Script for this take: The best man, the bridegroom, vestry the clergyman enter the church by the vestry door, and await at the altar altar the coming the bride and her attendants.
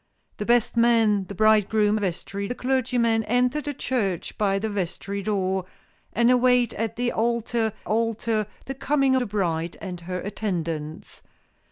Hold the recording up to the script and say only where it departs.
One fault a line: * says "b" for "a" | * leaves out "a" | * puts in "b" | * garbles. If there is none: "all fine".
all fine